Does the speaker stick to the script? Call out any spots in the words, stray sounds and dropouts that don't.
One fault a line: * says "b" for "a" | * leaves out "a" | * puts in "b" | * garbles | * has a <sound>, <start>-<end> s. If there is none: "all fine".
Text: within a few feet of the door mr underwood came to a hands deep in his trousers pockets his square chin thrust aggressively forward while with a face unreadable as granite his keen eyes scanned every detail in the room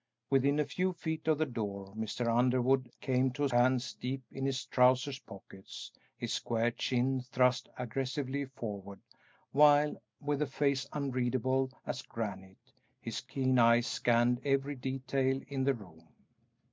all fine